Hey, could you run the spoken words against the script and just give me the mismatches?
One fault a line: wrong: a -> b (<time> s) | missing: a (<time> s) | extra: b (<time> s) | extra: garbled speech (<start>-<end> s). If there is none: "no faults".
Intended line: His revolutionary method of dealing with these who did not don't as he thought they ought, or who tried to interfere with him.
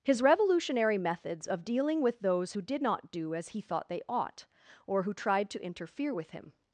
wrong: method -> methods (1.0 s)
wrong: these -> those (2.2 s)
wrong: don't -> do (3.1 s)